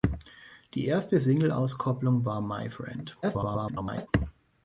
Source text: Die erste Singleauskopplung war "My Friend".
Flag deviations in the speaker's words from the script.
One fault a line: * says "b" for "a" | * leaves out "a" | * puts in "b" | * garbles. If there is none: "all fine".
* garbles